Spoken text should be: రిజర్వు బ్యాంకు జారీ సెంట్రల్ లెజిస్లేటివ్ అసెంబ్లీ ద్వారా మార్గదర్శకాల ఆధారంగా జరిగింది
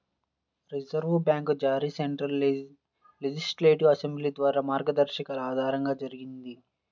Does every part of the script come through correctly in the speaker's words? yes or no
yes